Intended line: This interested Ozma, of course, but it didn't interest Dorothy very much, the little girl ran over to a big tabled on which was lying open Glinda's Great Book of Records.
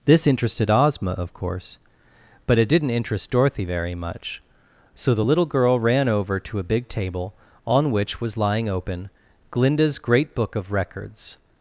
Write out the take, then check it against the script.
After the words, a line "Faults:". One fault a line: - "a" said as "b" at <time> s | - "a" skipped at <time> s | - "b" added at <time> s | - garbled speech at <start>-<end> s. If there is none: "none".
This interested Ozma, of course, but it didn't interest Dorothy very much, so the little girl ran over to a big table on which was lying open Glinda's Great Book of Records.
Faults:
- "so" added at 4.9 s
- "tabled" said as "table" at 6.9 s